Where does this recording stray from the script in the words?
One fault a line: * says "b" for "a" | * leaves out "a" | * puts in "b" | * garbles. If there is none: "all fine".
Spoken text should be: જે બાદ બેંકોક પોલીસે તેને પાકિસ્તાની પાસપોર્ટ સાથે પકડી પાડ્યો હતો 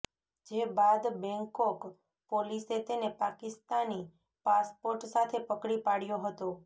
all fine